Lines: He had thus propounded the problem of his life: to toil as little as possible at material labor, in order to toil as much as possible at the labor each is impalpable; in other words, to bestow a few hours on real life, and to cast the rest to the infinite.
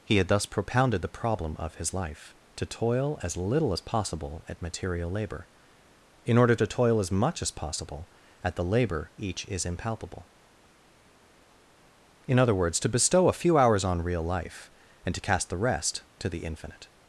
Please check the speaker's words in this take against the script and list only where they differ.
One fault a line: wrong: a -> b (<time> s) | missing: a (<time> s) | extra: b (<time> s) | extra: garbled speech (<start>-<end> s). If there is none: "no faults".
no faults